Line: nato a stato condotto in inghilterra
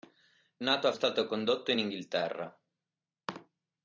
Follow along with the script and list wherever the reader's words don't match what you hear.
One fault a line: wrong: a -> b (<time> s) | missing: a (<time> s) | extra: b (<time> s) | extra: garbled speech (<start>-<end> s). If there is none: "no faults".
no faults